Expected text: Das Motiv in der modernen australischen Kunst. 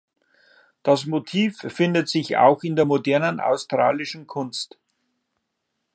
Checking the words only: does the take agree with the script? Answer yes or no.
no